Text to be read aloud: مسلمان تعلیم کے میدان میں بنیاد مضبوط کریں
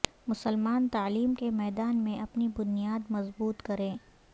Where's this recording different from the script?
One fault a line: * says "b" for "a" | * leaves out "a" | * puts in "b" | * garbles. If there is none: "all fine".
* puts in "اپنی"